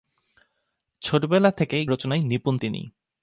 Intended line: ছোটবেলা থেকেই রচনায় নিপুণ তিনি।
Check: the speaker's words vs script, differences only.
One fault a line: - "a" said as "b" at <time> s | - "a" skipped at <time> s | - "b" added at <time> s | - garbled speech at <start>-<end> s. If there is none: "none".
none